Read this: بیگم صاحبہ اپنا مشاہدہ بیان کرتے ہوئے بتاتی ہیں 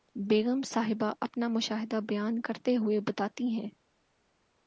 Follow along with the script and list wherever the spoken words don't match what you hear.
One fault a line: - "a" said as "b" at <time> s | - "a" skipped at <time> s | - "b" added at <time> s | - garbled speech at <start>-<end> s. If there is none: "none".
none